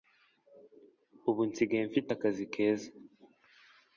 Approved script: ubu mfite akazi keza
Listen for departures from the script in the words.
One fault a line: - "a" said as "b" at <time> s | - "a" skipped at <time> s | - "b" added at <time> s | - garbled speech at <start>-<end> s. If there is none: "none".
- "nsigaye" added at 1.5 s